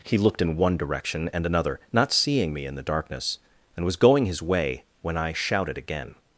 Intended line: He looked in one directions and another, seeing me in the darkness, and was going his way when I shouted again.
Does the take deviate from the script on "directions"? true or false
true